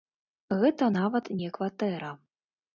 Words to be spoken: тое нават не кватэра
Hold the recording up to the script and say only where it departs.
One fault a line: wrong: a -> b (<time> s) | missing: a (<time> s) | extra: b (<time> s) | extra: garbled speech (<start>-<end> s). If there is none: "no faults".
wrong: тое -> гэта (0.6 s)